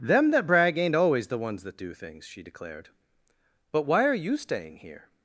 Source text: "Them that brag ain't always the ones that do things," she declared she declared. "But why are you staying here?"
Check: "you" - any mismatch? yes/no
no